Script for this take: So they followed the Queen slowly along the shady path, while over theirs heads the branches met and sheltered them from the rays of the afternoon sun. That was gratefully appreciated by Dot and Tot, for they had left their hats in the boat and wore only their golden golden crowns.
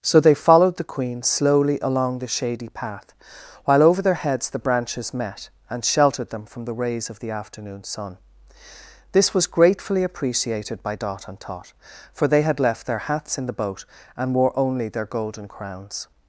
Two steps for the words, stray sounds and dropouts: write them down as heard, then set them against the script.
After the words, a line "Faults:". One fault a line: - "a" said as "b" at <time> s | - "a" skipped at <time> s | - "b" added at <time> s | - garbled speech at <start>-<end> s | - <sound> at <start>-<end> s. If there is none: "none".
So they followed the Queen slowly along the shady path, while over their heads the branches met and sheltered them from the rays of the afternoon sun. This was gratefully appreciated by Dot and Tot, for they had left their hats in the boat and wore only their golden crowns.
Faults:
- "theirs" said as "their" at 4.0 s
- "That" said as "This" at 9.1 s
- "golden" skipped at 15.5 s